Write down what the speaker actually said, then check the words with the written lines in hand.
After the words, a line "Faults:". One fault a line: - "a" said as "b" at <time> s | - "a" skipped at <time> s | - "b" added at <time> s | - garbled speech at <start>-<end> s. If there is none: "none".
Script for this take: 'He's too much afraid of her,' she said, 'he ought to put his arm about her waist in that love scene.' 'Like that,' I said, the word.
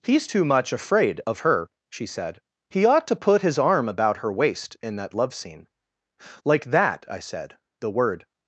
'He's too much afraid of her,' she said, 'he ought to put his arm about her waist in that love scene.' 'Like that,' I said, the word.
Faults:
none